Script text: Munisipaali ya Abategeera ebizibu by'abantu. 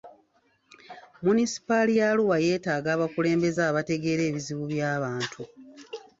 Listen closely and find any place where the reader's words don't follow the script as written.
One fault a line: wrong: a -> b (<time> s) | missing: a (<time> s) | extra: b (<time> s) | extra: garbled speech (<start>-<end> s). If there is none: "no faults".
extra: Arua yeetaaga abakulembeze (2.1 s)